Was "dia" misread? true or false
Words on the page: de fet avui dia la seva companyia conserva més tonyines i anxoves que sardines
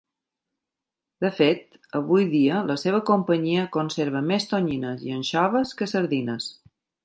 false